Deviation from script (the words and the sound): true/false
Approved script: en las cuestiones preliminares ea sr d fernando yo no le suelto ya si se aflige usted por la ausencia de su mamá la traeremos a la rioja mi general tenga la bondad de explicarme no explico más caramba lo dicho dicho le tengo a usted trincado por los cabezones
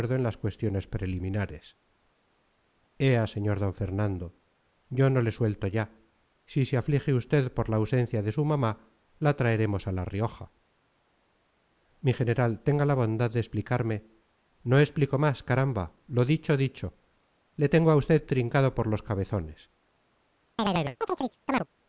true